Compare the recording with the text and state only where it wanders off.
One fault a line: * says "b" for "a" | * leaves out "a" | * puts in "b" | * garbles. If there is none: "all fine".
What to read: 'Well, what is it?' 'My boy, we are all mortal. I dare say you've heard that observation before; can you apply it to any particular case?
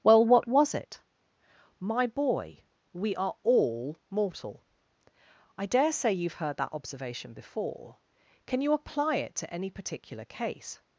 * says "was" for "is"